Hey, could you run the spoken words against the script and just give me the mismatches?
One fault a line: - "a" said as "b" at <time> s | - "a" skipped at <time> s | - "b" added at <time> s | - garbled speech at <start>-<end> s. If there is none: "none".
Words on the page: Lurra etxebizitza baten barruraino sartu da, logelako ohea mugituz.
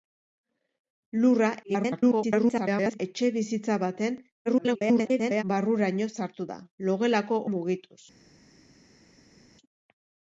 - garbled speech at 1.6-3.0 s
- garbled speech at 4.5-5.4 s
- "ohea" skipped at 7.4 s